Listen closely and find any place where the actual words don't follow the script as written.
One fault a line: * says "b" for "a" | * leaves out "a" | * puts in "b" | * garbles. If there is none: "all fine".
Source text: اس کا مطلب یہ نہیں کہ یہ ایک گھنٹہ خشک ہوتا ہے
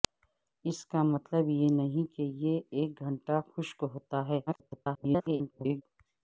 * garbles